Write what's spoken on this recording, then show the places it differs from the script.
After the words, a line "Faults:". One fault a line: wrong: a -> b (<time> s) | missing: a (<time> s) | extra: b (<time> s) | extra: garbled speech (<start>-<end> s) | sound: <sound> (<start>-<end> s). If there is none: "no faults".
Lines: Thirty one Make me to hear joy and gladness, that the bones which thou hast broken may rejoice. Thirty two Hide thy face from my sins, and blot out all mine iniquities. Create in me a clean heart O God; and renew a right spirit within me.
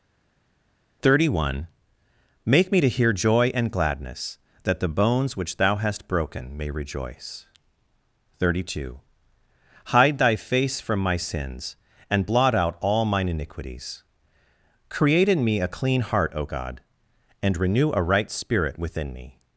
Thirty one Make me to hear joy and gladness, that the bones which thou hast broken may rejoice. Thirty two Hide thy face from my sins, and blot out all mine iniquities. Create in me a clean heart O God; and renew a right spirit within me.
Faults:
no faults